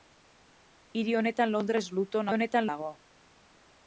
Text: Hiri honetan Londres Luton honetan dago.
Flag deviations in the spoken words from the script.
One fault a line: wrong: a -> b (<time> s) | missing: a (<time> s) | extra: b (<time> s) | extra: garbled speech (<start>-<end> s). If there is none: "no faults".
no faults